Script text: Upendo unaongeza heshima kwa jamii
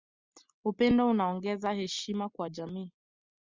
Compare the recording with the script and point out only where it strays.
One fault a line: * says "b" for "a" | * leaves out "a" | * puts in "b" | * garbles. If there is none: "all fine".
all fine